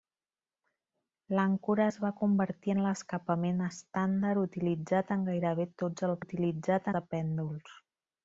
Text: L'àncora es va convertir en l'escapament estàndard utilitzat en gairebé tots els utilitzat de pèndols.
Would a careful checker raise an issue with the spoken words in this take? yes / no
no